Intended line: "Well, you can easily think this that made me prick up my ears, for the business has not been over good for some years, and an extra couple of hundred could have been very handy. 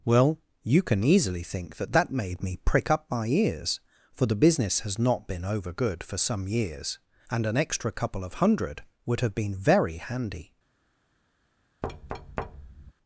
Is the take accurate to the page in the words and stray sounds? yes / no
no